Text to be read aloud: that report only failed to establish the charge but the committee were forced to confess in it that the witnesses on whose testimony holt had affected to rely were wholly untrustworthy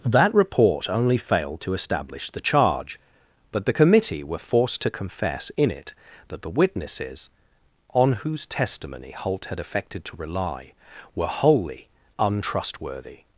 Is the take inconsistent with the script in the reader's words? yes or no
no